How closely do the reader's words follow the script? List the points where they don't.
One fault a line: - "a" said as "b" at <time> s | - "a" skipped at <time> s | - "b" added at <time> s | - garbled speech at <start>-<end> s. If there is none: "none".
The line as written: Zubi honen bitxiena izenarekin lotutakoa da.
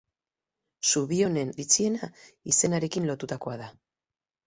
none